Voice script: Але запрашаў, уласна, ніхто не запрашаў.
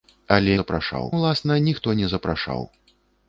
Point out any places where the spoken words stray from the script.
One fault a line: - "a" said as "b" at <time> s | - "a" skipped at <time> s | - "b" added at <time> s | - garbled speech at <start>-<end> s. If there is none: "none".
none